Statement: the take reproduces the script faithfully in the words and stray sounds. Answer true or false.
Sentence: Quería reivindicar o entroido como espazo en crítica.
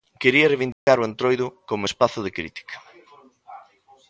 false